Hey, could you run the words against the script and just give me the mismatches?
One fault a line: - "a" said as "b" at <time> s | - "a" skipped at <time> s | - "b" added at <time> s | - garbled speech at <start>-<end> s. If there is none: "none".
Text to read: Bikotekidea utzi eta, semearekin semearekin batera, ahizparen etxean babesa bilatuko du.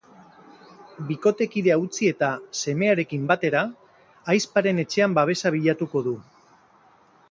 - "semearekin" skipped at 3.3 s